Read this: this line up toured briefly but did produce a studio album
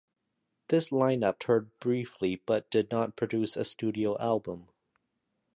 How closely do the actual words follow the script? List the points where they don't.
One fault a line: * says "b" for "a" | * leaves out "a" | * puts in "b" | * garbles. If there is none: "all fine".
* puts in "not"